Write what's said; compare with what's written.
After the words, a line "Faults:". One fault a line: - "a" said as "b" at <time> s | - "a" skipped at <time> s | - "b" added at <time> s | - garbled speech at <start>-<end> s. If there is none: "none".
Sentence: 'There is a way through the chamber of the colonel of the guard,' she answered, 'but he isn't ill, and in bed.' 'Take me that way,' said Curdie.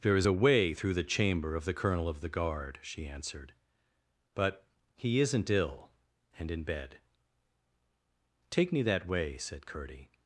'There is a way through the chamber of the colonel of the guard,' she answered, 'but he isn't ill, and in bed.' 'Take me that way,' said Curdie.
Faults:
none